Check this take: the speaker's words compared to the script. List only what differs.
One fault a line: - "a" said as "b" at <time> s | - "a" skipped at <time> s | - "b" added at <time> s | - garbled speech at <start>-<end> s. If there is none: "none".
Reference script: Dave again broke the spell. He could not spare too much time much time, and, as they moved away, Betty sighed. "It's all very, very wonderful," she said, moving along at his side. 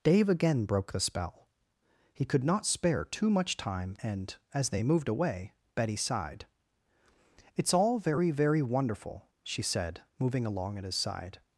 - "much time" skipped at 4.0 s